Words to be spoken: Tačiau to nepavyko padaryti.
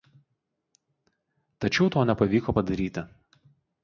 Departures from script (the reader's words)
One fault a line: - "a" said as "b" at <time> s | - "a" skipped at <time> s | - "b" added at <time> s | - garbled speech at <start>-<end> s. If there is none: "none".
none